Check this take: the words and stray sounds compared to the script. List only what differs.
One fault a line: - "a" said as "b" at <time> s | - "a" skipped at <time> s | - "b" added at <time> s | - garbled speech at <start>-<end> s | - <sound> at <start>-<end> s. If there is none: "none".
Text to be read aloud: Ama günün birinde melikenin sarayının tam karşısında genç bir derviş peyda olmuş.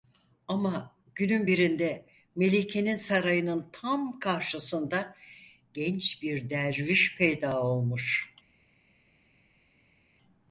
none